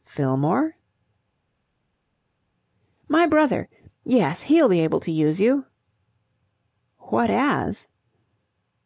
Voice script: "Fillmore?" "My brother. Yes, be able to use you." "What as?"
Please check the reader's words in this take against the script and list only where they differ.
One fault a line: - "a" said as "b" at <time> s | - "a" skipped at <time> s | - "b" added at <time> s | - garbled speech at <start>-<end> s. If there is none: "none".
- "he'll" added at 4.4 s